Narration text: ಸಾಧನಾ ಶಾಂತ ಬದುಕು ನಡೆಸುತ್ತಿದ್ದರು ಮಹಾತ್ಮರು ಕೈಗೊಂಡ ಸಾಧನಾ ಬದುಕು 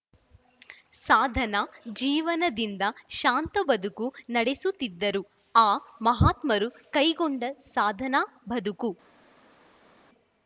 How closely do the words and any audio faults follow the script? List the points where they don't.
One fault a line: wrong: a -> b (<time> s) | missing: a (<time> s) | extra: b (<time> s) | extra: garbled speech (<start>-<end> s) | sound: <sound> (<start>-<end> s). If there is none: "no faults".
extra: ಜೀವನದಿಂದ (2.0 s)
extra: ಆ (5.5 s)